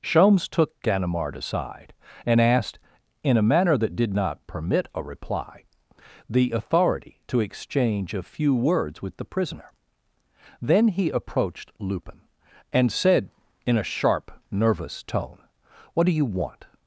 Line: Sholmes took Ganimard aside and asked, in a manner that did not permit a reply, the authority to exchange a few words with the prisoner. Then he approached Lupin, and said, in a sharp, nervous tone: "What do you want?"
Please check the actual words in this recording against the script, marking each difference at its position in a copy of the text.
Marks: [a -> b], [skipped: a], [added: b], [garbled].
Sholmes took Ganimard aside and asked, in a manner that did not permit a reply, the authority to exchange a few words with the prisoner. Then he approached Lupin, and said, in a sharp, nervous tone: "What do you want?"